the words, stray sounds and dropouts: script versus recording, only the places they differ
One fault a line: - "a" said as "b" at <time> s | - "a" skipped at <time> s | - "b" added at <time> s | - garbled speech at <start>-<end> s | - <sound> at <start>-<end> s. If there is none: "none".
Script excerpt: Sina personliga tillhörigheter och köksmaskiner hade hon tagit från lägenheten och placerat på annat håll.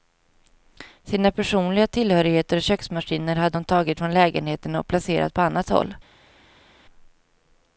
none